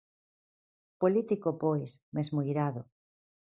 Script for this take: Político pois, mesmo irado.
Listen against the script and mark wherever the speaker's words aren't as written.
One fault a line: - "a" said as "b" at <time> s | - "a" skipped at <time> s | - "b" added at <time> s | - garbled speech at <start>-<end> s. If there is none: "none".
none